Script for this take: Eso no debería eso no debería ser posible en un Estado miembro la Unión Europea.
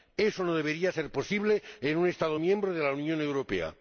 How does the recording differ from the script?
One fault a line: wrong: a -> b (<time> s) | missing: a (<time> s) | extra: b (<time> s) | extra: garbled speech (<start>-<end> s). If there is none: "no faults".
missing: eso no debería (0.9 s)
extra: de (2.7 s)